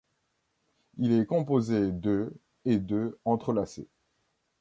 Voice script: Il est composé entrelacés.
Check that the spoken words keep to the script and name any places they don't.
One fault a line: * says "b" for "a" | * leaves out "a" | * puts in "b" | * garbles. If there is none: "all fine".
* puts in "de et de"